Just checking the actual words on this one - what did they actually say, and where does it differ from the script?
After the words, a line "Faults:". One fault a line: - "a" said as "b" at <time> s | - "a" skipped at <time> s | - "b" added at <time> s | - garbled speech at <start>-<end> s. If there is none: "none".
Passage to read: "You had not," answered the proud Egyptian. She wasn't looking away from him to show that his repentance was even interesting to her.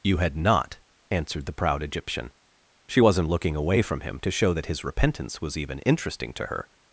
"You had not," answered the proud Egyptian. She wasn't looking away from him to show that his repentance was even interesting to her.
Faults:
none